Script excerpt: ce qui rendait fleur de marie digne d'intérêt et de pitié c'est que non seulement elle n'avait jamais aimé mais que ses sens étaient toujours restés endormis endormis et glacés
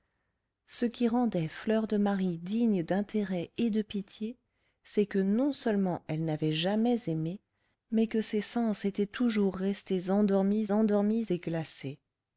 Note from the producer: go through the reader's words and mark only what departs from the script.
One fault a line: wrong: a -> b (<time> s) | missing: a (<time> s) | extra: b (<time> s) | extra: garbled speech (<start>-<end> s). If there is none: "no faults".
no faults